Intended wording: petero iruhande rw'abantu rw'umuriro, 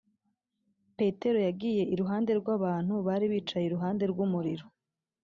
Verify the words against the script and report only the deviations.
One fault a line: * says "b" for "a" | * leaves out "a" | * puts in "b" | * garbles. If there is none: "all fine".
* puts in "yagiye"
* puts in "bari bicaye iruhande"